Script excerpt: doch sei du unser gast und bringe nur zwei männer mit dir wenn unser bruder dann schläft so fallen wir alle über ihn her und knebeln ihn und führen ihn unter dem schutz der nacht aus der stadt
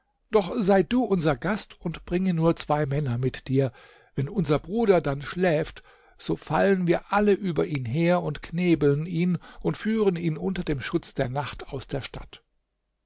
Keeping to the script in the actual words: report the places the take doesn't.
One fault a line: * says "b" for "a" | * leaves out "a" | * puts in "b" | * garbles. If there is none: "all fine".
all fine